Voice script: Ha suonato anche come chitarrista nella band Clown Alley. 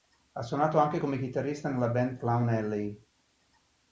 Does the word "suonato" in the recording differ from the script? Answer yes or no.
no